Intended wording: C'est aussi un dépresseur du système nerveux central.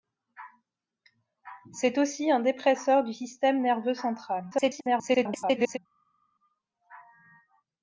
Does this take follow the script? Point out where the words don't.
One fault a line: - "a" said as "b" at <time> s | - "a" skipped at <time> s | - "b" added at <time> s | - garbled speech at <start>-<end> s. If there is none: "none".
- garbled speech at 4.5-5.8 s